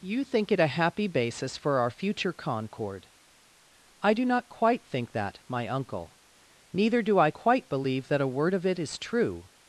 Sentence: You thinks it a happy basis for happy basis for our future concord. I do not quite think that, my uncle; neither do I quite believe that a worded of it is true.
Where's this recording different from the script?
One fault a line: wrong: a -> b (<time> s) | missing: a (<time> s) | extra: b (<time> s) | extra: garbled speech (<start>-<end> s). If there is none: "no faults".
wrong: thinks -> think (0.2 s)
missing: happy basis for (1.8 s)
wrong: worded -> word (8.3 s)